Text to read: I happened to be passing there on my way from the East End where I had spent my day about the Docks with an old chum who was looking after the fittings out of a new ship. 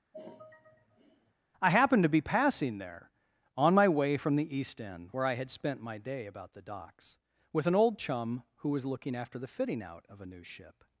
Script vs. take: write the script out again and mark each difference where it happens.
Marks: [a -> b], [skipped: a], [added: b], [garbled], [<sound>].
[sigh] I happened to be passing there on my way from the East End where I had spent my day about the Docks with an old chum who was looking after the [fittings -> fitting] out of a new ship.